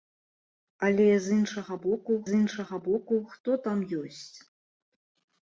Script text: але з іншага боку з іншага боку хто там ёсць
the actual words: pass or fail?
pass